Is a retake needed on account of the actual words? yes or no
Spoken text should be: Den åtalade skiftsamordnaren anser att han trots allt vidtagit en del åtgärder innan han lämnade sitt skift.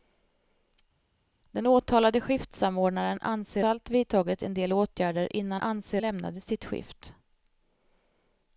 yes